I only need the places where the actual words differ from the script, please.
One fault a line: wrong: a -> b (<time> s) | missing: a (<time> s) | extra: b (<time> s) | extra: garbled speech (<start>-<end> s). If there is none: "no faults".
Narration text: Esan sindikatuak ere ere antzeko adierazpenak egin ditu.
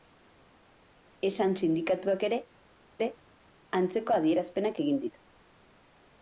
no faults